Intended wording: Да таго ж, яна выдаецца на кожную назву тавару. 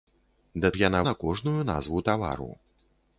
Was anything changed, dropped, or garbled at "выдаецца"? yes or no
yes